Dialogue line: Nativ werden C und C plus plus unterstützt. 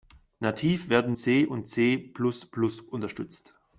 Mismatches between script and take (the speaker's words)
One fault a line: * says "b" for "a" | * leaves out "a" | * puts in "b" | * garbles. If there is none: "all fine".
all fine